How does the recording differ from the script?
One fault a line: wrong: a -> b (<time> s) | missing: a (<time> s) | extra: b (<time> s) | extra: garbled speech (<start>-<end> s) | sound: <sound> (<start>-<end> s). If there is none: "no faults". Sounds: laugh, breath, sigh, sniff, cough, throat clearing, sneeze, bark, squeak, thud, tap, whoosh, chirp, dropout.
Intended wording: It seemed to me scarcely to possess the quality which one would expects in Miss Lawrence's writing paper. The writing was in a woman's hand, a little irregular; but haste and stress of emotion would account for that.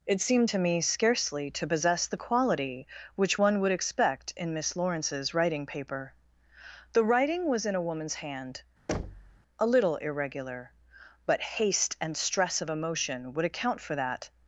wrong: expects -> expect (3.7 s)
sound: thud (8.9-9.4 s)